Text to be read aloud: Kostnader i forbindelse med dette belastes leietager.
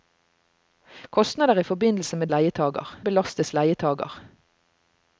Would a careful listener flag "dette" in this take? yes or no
yes